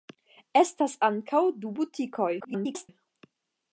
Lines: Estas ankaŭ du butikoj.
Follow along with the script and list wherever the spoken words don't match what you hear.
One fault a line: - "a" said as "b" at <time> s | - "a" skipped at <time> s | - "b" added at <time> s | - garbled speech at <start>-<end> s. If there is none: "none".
- garbled speech at 2.4-2.9 s